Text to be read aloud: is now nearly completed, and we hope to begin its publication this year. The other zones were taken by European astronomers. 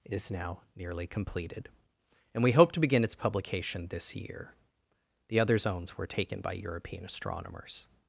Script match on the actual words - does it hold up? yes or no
yes